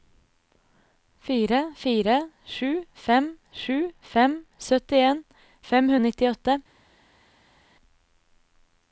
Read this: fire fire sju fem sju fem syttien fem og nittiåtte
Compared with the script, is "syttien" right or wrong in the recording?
right